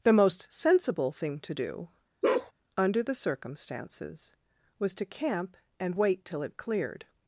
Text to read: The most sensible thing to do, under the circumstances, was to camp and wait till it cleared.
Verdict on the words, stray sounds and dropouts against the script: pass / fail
fail